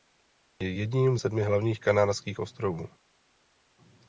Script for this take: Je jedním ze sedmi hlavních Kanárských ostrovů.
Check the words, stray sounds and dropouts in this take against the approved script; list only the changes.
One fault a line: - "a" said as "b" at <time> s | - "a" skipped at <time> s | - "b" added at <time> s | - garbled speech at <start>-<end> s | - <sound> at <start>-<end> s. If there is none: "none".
- "ze" skipped at 1.2 s